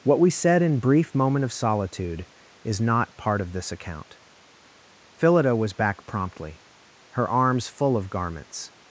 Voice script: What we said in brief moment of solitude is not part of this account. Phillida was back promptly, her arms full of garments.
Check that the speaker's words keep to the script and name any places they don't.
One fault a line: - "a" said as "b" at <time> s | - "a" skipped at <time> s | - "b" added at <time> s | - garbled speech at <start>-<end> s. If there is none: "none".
none